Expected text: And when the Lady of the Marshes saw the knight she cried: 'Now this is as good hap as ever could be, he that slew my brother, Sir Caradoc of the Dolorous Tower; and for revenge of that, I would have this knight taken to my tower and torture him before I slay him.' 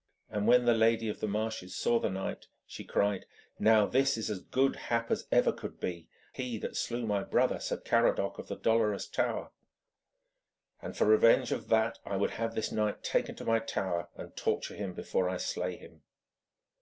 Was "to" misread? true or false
false